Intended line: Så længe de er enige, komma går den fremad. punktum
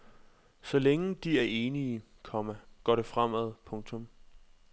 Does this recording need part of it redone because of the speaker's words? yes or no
yes